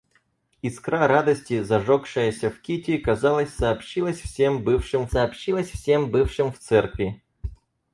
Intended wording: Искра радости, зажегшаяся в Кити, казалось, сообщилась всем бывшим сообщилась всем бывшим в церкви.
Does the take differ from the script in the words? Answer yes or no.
no